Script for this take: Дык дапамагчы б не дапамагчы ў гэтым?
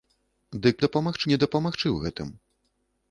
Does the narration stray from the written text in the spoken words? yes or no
no